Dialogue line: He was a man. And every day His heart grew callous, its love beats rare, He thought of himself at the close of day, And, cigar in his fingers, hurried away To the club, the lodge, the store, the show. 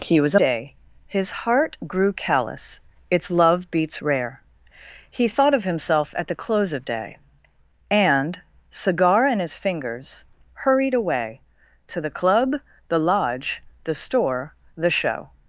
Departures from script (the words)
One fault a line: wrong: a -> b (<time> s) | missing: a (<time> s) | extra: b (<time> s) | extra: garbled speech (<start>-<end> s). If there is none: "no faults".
missing: man And every (0.4 s)